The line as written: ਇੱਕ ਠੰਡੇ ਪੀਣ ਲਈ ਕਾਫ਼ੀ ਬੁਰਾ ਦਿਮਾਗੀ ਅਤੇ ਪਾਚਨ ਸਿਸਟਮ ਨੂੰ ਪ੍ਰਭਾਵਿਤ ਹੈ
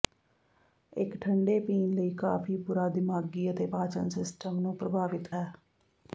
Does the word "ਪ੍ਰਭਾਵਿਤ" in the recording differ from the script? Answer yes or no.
no